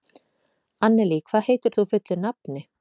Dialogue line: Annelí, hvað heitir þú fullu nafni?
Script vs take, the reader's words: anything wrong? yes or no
no